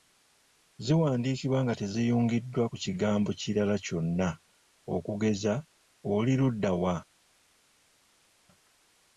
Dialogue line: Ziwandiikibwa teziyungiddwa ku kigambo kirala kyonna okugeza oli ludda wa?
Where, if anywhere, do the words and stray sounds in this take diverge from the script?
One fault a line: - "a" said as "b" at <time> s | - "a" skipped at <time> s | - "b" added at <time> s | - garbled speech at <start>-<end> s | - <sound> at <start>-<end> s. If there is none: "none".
- "nga" added at 1.6 s